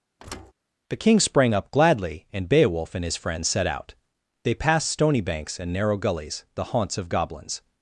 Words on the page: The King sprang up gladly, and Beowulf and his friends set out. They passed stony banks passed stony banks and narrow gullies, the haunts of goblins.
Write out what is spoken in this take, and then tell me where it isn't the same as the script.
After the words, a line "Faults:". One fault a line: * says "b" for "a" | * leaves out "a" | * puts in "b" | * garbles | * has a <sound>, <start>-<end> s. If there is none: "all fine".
The King sprang up gladly, and Beowulf and his friends set out. They passed stony banks and narrow gullies, the haunts of goblins.
Faults:
* has a thud, 0.2-0.5 s
* leaves out "passed stony banks"